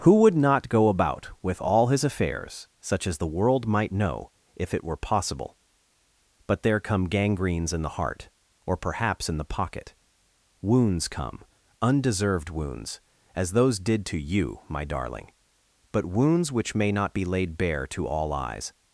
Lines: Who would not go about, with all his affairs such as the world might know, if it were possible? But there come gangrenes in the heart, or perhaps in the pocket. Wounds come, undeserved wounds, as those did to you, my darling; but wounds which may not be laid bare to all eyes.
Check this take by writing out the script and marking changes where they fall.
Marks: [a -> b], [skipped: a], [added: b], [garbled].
Who would not go about, with all his affairs such as the world might know, if it were possible? But there come gangrenes in the heart, or perhaps in the pocket. Wounds come, undeserved wounds, as those did to you, my darling; but wounds which may not be laid bare to all eyes.